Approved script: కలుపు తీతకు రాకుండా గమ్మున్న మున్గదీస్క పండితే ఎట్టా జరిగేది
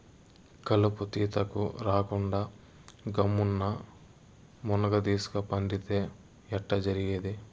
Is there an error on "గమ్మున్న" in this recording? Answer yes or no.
no